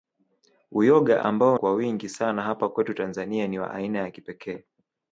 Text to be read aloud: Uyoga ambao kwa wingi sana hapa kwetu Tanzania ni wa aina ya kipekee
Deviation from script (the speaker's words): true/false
false